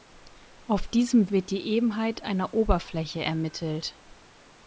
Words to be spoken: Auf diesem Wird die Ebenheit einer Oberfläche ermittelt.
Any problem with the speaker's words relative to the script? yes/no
no